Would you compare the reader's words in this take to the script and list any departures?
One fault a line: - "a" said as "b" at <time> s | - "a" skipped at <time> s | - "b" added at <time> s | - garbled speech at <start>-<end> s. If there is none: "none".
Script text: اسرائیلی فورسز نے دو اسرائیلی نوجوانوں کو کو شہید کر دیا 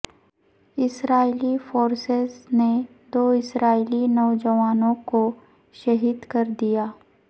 - "کو" skipped at 5.2 s